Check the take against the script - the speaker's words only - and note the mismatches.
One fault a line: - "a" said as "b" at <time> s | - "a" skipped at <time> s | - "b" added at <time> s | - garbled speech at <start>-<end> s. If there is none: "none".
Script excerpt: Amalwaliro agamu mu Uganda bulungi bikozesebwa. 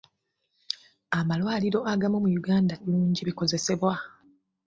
none